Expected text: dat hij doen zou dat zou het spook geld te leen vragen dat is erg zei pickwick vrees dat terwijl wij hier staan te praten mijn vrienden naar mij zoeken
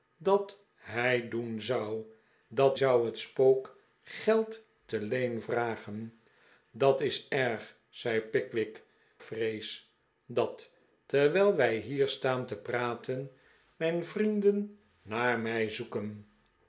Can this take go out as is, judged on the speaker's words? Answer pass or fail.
pass